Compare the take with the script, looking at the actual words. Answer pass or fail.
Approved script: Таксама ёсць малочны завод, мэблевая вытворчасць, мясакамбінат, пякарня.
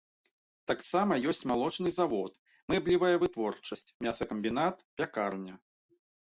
pass